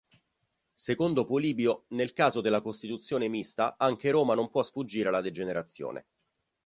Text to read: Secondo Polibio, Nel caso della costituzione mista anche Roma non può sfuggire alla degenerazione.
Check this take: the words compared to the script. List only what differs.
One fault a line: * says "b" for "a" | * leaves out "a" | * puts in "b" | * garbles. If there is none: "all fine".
all fine